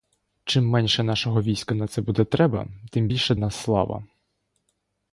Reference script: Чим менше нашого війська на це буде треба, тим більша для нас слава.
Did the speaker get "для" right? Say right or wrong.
wrong